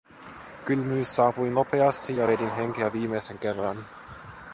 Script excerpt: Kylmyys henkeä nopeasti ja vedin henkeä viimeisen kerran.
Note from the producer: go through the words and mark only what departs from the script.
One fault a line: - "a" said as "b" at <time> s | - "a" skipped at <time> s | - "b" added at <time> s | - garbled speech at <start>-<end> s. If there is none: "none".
- "henkeä" said as "saapui" at 1.1 s